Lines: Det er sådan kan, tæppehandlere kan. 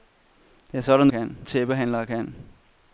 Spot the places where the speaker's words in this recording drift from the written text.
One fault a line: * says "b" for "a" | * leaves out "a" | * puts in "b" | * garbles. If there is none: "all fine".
all fine